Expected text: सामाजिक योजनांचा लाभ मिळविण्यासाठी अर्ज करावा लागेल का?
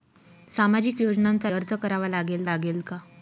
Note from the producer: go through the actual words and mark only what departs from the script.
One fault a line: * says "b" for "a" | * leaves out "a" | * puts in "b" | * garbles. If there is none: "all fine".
* leaves out "लाभ मिळविण्यासाठी"
* puts in "लागेल"